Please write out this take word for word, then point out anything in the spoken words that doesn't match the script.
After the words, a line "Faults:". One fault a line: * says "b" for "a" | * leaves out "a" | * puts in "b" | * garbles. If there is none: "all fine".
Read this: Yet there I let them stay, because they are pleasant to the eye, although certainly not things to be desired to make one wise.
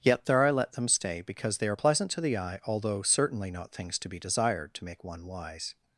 Yet there I let them stay, because they are pleasant to the eye, although certainly not things to be desired to make one wise.
Faults:
all fine